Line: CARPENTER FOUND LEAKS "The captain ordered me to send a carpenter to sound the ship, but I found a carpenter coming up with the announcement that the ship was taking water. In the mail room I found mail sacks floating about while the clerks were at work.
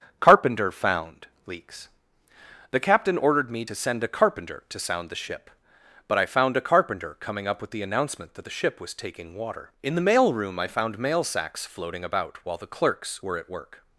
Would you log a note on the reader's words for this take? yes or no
no